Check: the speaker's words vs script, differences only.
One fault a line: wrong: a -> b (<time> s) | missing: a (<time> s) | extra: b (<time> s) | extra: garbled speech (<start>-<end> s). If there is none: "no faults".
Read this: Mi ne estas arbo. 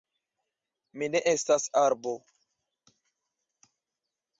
no faults